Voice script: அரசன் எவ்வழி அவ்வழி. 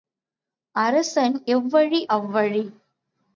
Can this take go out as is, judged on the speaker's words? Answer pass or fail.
pass